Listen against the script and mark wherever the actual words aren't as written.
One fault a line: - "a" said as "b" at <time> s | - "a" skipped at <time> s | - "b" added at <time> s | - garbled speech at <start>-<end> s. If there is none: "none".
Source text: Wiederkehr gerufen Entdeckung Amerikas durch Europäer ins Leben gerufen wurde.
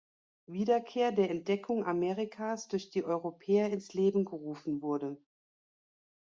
- "gerufen" said as "der" at 1.1 s
- "die" added at 2.9 s